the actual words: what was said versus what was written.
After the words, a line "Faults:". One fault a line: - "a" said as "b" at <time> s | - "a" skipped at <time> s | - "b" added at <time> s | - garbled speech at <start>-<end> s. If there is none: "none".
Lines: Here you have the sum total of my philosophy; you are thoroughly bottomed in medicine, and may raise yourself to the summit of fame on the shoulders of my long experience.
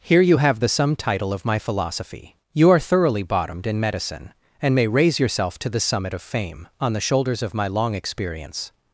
Here you have the sum title of my philosophy; you are thoroughly bottomed in medicine, and may raise yourself to the summit of fame on the shoulders of my long experience.
Faults:
- "total" said as "title" at 0.9 s